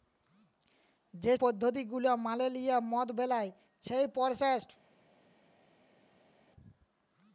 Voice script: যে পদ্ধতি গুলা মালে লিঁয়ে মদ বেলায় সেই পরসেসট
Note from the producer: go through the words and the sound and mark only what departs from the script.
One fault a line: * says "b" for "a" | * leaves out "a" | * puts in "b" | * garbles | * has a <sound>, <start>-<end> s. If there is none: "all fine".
all fine